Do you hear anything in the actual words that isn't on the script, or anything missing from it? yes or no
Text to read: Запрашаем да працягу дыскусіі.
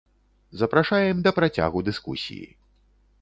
no